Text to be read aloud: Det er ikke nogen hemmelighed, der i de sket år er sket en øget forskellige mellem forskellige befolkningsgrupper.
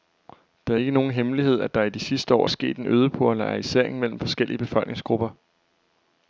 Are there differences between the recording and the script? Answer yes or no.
yes